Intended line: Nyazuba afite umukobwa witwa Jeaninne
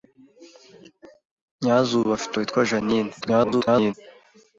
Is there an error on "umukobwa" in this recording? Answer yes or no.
yes